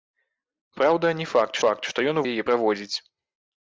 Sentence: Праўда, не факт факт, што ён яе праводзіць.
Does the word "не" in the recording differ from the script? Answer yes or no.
no